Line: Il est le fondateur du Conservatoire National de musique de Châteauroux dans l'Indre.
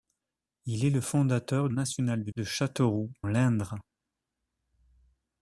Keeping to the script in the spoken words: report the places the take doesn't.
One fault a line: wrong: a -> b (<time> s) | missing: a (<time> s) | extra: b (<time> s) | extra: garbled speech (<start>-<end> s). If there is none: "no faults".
missing: du Conservatoire (1.7 s)
missing: musique (2.3 s)
missing: dans (3.1 s)